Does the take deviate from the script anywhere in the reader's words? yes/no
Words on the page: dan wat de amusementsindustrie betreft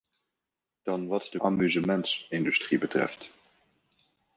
no